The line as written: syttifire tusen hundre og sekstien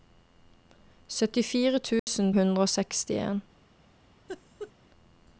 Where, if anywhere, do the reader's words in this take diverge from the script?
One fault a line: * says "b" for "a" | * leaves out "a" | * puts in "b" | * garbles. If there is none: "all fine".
all fine